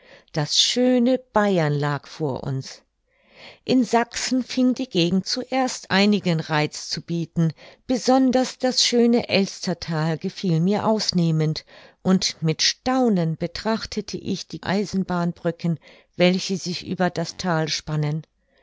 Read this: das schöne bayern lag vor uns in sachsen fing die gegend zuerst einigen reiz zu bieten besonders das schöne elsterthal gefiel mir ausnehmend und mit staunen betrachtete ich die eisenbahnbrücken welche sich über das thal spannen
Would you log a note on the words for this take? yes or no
no